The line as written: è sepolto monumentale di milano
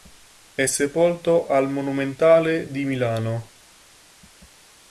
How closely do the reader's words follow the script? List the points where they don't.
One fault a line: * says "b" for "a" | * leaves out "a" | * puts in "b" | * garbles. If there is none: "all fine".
* puts in "al"